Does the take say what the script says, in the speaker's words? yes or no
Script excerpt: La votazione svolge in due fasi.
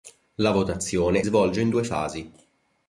yes